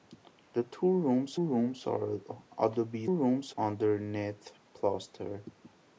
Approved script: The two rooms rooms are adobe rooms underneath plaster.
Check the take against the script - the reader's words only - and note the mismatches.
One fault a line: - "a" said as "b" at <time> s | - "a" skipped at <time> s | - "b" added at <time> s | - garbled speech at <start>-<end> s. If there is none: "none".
none